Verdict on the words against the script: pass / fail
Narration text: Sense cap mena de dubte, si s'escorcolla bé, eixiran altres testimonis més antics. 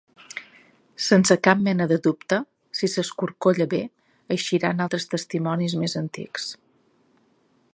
pass